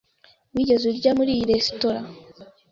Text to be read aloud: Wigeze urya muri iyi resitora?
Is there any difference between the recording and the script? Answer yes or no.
no